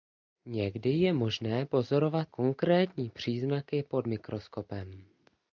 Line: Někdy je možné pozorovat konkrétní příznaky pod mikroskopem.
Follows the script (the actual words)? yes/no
yes